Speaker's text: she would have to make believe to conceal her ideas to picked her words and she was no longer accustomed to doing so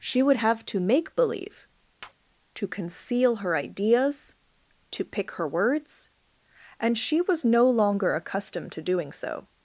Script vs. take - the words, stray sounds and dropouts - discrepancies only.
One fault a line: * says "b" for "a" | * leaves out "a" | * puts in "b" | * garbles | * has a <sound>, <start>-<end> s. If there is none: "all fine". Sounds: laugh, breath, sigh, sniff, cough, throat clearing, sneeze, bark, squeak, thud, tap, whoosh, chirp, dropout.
* has a tap, 2.0-2.1 s
* says "pick" for "picked"